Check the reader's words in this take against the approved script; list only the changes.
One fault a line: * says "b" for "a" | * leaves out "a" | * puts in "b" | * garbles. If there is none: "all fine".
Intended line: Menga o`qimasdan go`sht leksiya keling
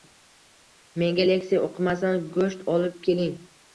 * puts in "leksiya"
* says "olib" for "leksiya"